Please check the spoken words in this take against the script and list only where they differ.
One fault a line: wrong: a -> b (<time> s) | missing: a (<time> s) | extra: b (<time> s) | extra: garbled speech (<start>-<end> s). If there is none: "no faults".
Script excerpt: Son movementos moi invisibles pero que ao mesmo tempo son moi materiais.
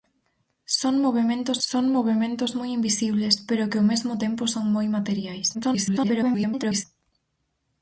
extra: son movementos (1.7 s)
extra: garbled speech (5.5-6.8 s)